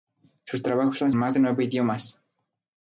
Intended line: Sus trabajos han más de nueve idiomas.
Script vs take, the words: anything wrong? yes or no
no